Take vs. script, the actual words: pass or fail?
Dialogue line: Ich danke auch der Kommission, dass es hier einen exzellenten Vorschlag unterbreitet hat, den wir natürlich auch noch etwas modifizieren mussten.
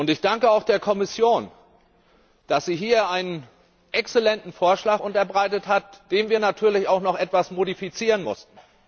fail